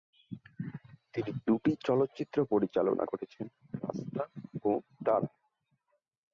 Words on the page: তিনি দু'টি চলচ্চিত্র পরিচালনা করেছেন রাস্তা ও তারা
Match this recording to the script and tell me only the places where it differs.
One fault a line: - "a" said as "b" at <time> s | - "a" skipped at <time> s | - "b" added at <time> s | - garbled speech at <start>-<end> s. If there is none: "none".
none